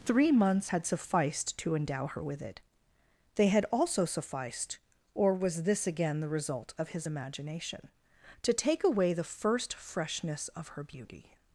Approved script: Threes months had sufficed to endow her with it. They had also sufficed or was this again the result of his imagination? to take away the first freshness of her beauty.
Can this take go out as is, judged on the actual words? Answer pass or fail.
fail